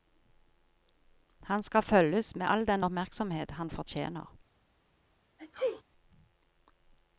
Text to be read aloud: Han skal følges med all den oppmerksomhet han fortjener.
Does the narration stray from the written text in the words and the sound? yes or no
yes